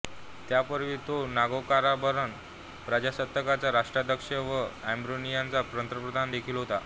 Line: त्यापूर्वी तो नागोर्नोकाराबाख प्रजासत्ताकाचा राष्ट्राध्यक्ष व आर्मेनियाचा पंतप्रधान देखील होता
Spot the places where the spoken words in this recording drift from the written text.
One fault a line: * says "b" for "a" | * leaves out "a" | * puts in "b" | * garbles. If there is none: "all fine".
all fine